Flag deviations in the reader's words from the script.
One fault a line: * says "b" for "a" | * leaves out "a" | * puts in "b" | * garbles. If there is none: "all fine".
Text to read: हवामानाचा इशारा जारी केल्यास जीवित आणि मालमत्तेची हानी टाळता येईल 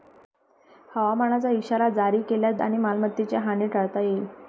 * leaves out "जीवित"